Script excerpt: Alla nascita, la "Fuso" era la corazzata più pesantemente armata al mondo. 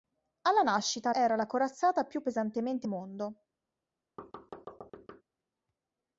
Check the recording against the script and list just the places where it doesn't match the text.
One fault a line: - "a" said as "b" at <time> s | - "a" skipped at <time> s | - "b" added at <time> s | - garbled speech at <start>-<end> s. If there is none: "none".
- "la Fuso" skipped at 1.1 s
- "armata al" skipped at 2.9 s